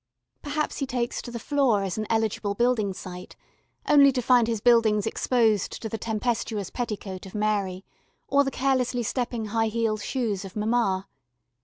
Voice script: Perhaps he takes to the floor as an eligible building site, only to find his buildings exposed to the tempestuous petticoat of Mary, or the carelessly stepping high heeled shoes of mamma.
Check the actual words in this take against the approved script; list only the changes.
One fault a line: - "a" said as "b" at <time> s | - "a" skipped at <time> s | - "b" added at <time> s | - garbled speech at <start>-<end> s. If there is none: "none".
none